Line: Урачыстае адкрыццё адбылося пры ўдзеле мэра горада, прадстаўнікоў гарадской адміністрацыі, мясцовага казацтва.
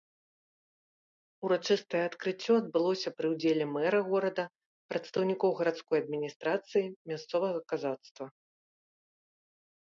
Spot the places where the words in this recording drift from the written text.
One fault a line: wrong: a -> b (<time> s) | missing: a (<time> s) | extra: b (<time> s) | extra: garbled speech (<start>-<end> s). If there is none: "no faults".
no faults